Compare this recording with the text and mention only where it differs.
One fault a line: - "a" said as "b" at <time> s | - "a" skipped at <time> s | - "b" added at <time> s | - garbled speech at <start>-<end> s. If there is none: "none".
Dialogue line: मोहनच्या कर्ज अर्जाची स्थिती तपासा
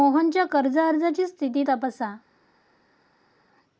none